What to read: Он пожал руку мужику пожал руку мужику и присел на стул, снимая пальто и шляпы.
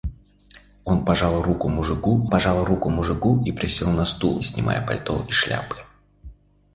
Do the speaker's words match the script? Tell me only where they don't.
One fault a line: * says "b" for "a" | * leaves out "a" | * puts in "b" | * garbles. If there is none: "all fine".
all fine